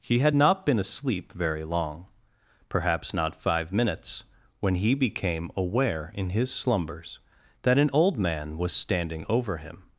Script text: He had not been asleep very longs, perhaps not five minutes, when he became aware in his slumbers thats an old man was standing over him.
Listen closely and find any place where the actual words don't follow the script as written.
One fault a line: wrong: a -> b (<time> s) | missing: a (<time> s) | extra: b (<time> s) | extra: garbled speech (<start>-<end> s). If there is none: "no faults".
wrong: longs -> long (1.6 s)
wrong: thats -> that (7.6 s)